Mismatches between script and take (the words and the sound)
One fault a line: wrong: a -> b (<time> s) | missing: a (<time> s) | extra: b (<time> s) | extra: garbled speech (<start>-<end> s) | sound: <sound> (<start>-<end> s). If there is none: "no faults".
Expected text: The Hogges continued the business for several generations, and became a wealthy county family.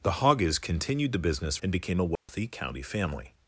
missing: for several generations (1.6 s)
sound: dropout (2.2-2.3 s)